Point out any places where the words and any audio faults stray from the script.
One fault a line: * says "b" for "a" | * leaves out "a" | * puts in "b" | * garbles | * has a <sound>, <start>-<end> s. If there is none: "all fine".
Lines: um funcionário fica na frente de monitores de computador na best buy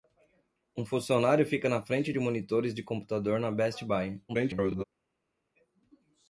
* garbles